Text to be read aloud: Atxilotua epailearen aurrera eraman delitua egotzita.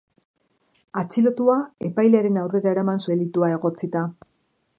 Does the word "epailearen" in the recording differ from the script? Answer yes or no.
no